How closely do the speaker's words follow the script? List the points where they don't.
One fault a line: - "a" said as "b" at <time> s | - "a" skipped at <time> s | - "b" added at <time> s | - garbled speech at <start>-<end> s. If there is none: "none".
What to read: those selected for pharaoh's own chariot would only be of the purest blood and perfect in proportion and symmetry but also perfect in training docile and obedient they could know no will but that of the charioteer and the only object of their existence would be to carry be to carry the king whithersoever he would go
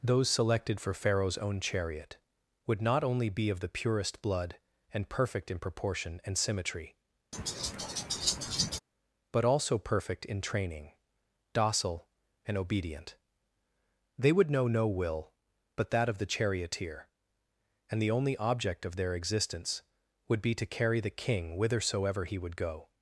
- "not" added at 2.8 s
- "could" said as "would" at 14.3 s
- "be to carry" skipped at 21.0 s